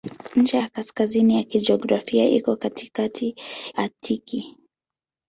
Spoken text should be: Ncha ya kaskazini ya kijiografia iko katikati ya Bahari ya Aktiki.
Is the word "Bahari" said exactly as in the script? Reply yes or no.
no